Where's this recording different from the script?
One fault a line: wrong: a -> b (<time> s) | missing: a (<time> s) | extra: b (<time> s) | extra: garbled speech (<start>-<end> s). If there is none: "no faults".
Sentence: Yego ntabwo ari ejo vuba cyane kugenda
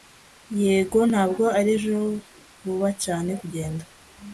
no faults